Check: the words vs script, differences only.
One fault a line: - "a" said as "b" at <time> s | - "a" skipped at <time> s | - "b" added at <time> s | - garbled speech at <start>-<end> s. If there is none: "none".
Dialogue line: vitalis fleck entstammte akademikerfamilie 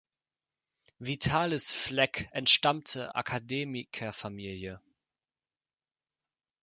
none